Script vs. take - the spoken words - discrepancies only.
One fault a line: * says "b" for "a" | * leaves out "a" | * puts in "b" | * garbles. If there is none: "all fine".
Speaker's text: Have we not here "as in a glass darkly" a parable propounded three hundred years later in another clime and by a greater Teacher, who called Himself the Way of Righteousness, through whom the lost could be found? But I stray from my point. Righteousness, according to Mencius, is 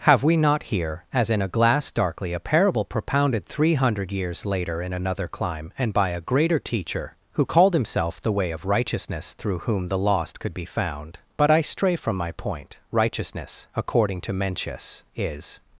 all fine